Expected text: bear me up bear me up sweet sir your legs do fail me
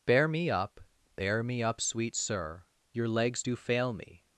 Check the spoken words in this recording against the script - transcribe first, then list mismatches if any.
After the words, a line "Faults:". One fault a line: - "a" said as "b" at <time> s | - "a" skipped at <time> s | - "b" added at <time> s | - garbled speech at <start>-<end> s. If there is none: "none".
bear me up bear me up sweet sir your legs do fail me
Faults:
none